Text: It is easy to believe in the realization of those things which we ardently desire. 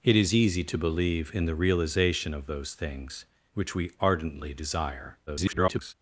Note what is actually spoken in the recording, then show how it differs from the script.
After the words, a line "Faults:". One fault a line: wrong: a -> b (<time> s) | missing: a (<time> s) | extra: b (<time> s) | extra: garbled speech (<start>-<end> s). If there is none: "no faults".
It is easy to believe in the realization of those things which we ardently desire. [garbled]
Faults:
extra: garbled speech (5.3-5.9 s)